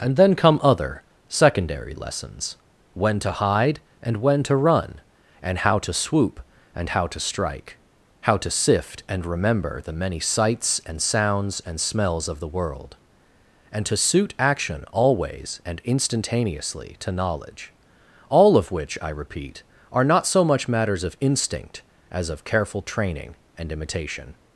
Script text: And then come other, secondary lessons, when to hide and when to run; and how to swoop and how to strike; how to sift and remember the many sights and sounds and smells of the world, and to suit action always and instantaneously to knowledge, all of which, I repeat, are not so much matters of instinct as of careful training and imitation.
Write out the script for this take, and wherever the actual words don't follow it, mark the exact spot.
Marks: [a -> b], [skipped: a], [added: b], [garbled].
And then come other, secondary lessons, when to hide and when to run; and how to swoop and how to strike; how to sift and remember the many sights and sounds and smells of the world, and to suit action always and instantaneously to knowledge, all of which, I repeat, are not so much matters of instinct as of careful training and imitation.